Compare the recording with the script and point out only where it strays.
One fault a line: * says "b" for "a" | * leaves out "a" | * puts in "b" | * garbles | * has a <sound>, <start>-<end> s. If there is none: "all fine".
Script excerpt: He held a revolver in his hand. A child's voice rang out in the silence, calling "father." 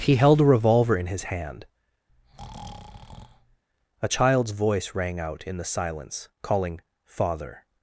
* has a breath, 2.1-3.6 s